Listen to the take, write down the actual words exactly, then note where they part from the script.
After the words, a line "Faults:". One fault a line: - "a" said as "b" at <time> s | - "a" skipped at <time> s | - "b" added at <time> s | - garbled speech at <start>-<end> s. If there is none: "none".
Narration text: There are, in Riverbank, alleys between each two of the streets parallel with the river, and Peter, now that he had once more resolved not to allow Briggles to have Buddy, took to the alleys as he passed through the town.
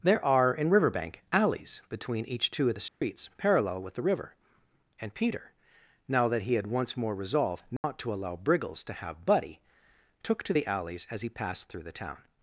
There are, in Riverbank, alleys between each two of the streets parallel with the river, and Peter, now that he had once more resolved not to allow Briggles to have Buddy, took to the alleys as he passed through the town.
Faults:
none